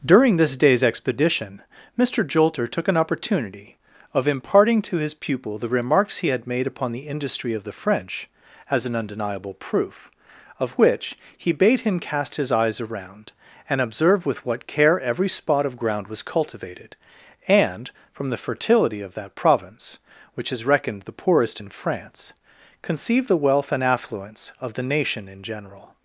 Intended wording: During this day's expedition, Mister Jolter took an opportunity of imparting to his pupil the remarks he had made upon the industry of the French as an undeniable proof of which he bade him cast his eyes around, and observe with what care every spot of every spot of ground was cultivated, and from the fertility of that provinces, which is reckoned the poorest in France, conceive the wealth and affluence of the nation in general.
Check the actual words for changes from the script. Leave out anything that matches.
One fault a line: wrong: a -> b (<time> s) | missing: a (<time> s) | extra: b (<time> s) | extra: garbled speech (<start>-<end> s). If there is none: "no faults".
missing: every spot of (15.8 s)
wrong: provinces -> province (19.4 s)